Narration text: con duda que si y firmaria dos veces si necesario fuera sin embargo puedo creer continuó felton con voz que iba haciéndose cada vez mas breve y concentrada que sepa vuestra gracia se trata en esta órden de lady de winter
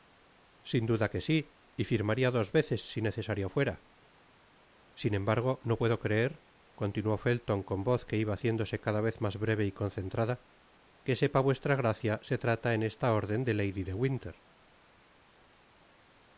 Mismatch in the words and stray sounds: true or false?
true